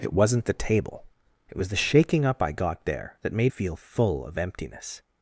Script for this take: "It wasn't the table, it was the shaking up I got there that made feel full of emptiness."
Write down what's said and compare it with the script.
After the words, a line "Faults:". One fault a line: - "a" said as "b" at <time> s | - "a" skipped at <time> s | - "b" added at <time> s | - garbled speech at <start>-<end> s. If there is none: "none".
"It wasn't the table, it was the shaking up I got there that made feel full of emptiness."
Faults:
none